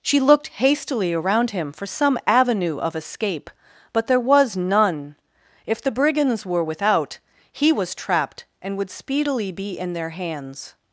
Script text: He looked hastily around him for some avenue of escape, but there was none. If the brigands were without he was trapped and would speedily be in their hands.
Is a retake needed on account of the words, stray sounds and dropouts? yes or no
yes